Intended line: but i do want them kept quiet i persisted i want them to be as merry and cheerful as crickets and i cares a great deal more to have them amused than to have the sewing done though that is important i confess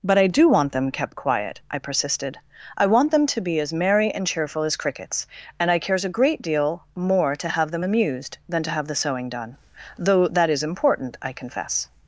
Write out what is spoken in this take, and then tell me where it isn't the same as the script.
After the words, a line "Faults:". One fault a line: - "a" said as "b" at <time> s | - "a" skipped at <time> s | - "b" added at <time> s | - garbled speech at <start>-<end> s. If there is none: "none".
but i do want them kept quiet i persisted i want them to be as merry and cheerful as crickets and i cares a great deal more to have them amused than to have the sewing done though that is important i confess
Faults:
none